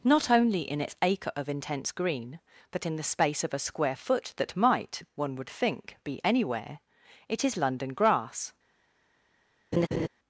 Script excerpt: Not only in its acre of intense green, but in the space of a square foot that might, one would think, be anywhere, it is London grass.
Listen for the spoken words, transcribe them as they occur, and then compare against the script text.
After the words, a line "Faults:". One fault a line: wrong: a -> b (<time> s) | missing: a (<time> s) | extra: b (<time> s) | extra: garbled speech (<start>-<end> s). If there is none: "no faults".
Not only in its acre of intense green, but in the space of a square foot that might, one would think, be anywhere, it is London grass.
Faults:
no faults